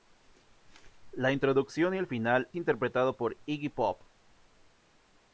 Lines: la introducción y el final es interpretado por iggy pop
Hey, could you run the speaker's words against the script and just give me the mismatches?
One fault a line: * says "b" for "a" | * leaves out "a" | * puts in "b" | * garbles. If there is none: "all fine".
* leaves out "es"